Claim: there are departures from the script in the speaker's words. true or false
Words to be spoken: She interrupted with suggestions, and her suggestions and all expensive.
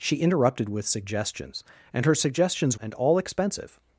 false